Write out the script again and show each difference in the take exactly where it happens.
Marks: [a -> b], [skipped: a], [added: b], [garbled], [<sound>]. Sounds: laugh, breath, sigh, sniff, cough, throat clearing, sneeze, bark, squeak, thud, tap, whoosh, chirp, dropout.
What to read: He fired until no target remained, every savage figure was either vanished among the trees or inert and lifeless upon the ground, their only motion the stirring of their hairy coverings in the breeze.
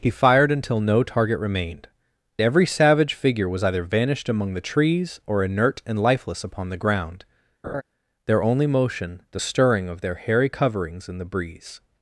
He fired until no target remained, every savage figure was either vanished among the trees or inert and lifeless upon the ground, [laugh] their only motion the stirring of their hairy coverings in the breeze.